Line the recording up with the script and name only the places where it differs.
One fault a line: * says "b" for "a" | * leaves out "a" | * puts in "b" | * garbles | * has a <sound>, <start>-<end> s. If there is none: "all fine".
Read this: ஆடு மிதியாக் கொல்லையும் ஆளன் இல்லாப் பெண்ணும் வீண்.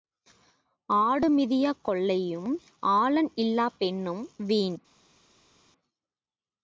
all fine